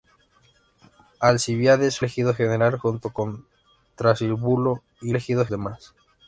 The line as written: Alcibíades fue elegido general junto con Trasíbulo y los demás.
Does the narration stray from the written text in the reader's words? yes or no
yes